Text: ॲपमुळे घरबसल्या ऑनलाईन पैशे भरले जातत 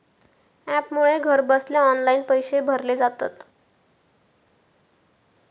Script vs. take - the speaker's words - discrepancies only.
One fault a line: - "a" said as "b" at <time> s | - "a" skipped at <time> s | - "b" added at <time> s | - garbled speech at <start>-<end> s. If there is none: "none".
none